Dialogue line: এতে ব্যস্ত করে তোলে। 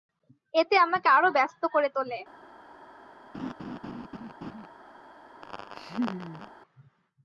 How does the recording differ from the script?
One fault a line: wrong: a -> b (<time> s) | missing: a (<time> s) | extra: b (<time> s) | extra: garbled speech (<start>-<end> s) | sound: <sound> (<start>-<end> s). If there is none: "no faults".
extra: আমাকে আরো (0.8 s)
sound: laugh (3.3-4.7 s)
sound: laugh (5.4-6.5 s)